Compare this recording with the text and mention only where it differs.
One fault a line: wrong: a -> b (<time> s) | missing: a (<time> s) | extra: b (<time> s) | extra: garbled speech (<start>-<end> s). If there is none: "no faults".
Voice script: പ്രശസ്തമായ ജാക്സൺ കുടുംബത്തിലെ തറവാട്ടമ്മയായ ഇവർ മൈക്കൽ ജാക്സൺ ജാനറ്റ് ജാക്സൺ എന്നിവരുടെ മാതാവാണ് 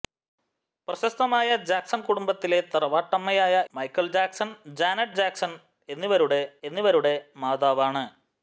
missing: ഇവർ (3.6 s)
extra: എന്നിവരുടെ (6.6 s)